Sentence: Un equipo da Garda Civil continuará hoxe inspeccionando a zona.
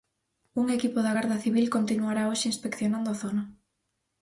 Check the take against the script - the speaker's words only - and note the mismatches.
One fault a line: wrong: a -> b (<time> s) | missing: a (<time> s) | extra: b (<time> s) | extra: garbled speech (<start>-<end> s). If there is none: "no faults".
no faults